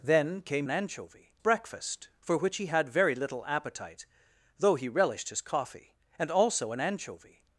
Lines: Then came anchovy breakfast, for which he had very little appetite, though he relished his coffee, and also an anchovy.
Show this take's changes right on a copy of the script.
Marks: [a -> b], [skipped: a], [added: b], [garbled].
Then came anchovy breakfast, for which he had very little appetite, though he relished his coffee, and also an anchovy.